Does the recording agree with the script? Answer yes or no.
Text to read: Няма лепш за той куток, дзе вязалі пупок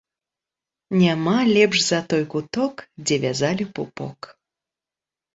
yes